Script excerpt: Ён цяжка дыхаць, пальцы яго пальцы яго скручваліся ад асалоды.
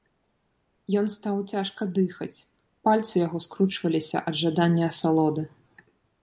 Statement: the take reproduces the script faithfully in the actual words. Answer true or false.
false